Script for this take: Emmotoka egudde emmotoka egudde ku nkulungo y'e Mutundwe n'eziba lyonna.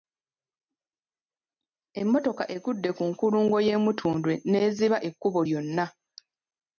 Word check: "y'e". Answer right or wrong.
right